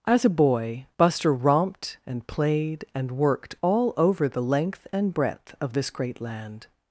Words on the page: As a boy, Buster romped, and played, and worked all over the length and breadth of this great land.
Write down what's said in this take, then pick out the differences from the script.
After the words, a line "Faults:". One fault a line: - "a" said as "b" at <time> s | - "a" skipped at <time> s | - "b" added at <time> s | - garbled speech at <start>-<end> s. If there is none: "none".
As a boy, Buster romped, and played, and worked all over the length and breadth of this great land.
Faults:
none